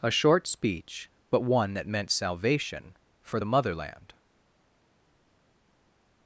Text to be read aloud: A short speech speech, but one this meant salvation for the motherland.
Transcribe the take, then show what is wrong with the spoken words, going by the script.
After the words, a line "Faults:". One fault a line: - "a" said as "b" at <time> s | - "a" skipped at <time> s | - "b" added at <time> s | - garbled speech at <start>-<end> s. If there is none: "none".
A short speech, but one that meant salvation for the motherland.
Faults:
- "speech" skipped at 1.1 s
- "this" said as "that" at 1.8 s